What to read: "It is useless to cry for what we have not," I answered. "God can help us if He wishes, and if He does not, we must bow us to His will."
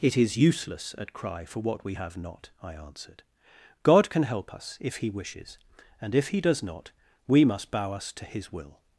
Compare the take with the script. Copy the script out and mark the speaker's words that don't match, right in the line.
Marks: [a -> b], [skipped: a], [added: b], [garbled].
"It is useless [to -> at] cry for what we have not," I answered. "God can help us if He wishes, and if He does not, we must bow us to His will."